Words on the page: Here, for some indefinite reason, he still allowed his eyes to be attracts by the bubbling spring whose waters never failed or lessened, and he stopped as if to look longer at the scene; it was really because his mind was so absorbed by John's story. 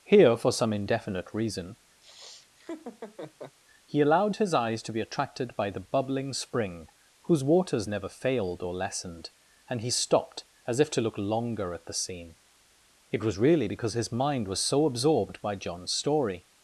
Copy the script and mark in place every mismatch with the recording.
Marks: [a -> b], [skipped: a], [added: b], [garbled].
Here, for some indefinite reason, he [skipped: still] allowed his eyes to be [attracts -> attracted] by the bubbling spring whose waters never failed or lessened, and he stopped as if to look longer at the scene; it was really because his mind was so absorbed by John's story.